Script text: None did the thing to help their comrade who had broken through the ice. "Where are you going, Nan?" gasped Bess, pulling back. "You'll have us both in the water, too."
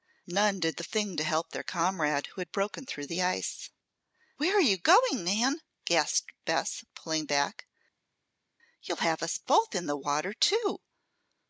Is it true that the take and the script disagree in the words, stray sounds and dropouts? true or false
false